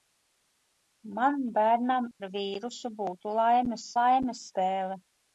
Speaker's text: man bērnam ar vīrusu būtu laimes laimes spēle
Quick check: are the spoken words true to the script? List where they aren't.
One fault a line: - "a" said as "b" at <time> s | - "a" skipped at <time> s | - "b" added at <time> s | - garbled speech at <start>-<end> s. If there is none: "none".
none